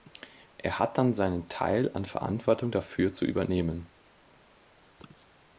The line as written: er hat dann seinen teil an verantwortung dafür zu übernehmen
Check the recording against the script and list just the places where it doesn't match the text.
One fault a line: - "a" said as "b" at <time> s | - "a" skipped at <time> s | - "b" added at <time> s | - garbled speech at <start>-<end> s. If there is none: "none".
none